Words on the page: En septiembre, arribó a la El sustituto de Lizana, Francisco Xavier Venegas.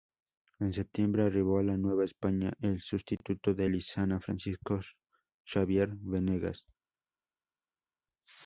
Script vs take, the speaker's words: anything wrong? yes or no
yes